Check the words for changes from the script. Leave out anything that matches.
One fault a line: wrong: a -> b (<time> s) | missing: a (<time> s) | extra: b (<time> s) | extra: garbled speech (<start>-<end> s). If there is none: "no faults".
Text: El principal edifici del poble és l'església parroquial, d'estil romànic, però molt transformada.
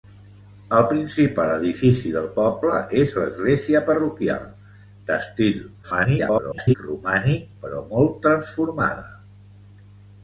extra: garbled speech (5.8-6.7 s)